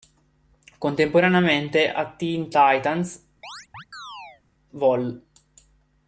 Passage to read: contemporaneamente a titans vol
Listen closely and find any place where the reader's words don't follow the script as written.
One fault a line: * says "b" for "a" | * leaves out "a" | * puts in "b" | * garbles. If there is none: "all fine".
* puts in "teen"